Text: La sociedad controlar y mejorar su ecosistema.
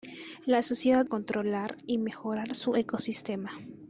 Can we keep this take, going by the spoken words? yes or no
yes